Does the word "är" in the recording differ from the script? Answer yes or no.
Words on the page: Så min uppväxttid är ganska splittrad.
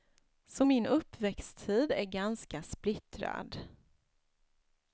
no